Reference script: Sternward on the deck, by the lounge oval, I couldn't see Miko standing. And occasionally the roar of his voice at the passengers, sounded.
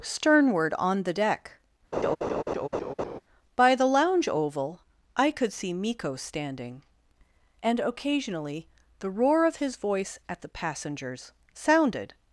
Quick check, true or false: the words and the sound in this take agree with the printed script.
false